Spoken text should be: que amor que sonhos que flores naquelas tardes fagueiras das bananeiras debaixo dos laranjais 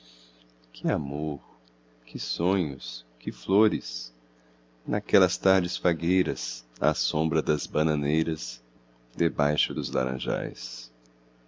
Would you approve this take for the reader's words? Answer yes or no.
no